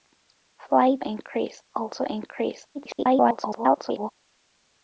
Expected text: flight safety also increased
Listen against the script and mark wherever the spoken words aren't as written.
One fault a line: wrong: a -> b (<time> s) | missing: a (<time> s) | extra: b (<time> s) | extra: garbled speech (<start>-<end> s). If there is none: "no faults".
wrong: safety -> increased (1.0 s)
extra: garbled speech (2.7-4.1 s)